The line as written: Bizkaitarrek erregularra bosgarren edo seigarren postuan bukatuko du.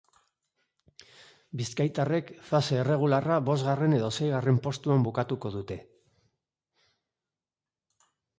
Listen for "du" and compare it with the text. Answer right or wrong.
wrong